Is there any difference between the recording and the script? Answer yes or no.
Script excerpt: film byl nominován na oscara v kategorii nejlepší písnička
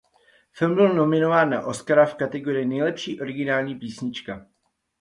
yes